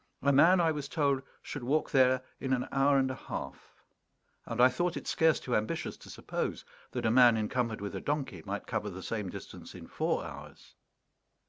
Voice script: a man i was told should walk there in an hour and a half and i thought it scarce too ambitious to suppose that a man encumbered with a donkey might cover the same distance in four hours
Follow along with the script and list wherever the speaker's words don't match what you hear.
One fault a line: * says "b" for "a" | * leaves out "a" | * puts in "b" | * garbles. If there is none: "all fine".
all fine